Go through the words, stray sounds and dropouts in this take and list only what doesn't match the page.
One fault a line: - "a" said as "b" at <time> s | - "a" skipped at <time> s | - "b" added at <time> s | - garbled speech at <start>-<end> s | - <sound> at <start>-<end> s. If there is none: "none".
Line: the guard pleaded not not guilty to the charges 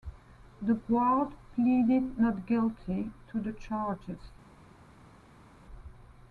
- "not" skipped at 2.5 s